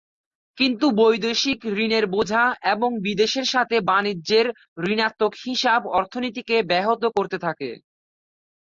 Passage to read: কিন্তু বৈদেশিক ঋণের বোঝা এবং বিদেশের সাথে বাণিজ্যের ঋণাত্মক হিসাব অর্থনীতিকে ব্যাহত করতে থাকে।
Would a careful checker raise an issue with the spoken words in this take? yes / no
no